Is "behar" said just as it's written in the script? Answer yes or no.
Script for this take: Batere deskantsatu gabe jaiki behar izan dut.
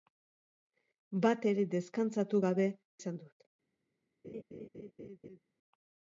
no